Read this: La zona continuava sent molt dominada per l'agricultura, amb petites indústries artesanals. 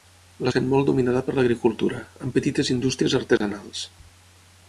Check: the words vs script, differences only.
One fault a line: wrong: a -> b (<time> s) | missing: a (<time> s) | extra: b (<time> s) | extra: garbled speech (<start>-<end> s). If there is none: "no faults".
missing: zona continuava (0.5 s)